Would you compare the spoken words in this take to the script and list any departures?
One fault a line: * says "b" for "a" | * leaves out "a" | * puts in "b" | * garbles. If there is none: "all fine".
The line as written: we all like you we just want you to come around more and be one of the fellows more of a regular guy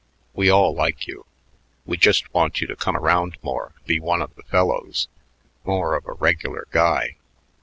* leaves out "and"